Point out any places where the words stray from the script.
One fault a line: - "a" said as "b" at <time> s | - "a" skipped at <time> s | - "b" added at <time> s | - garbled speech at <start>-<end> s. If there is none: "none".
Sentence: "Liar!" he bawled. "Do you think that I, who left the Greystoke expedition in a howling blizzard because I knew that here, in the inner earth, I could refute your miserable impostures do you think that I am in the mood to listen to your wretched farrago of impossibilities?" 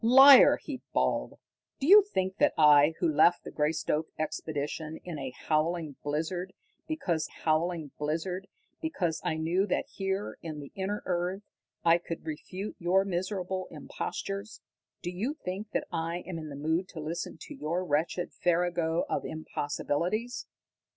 - "howling blizzard because" added at 7.3 s